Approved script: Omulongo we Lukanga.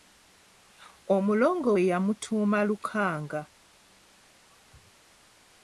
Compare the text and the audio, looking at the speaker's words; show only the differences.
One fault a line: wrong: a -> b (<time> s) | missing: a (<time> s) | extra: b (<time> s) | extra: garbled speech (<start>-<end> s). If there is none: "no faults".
extra: yamutuuma (1.9 s)